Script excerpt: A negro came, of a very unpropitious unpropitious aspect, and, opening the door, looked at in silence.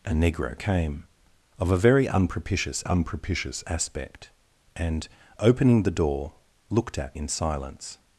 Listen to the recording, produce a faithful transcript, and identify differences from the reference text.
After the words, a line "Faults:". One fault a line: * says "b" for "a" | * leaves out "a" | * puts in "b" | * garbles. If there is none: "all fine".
A negro came, of a very unpropitious unpropitious aspect, and, opening the door, looked at in silence.
Faults:
all fine